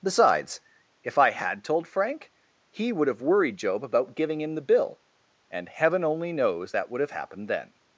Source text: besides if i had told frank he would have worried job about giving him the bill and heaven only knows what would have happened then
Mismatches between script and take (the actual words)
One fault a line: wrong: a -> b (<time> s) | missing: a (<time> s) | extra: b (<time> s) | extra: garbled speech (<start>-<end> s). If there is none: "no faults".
wrong: what -> that (6.7 s)